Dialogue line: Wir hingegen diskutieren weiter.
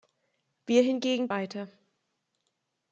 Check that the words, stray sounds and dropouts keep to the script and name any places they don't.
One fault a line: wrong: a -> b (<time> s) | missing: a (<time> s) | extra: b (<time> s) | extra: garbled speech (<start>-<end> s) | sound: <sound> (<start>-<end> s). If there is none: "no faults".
missing: diskutieren (1.3 s)